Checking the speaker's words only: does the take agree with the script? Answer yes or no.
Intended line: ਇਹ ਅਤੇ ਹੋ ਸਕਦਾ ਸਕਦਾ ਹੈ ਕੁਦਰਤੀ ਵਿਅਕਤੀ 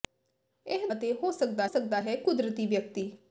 yes